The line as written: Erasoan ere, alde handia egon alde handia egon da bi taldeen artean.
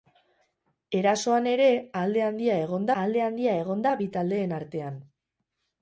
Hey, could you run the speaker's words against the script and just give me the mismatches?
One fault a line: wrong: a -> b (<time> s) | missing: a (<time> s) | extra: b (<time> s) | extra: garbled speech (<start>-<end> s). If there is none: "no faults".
no faults